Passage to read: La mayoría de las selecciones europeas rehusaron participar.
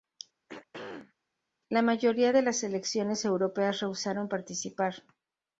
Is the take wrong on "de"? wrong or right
right